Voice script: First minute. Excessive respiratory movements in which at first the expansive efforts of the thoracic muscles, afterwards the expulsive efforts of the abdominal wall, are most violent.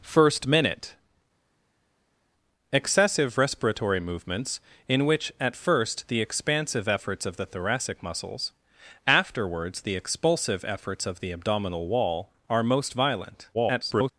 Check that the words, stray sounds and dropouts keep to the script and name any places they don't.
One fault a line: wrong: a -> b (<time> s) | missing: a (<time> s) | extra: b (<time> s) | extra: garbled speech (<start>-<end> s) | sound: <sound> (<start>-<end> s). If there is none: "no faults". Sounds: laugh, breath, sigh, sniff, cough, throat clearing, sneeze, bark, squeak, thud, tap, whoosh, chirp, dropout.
extra: garbled speech (13.5-14.1 s)